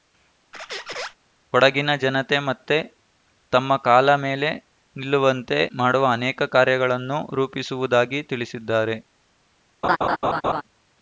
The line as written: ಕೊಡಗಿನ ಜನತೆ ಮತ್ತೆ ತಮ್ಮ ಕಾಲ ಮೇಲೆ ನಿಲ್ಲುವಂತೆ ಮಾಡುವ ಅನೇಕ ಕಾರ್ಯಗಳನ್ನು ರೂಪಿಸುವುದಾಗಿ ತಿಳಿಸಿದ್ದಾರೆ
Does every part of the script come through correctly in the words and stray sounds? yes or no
no